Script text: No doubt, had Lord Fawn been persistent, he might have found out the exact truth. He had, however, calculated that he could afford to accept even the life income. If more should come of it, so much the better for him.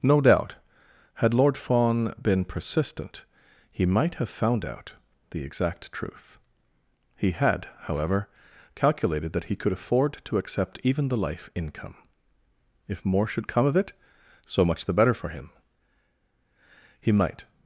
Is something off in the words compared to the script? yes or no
yes